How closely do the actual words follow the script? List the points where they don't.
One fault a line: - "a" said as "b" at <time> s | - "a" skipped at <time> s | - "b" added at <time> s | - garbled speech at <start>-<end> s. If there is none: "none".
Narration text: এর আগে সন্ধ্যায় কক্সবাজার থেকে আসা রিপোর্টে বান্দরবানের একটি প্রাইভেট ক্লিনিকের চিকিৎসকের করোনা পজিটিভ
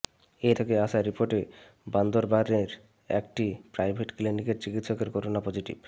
- "আগে সন্ধ্যায় কক্সবাজার" skipped at 0.6 s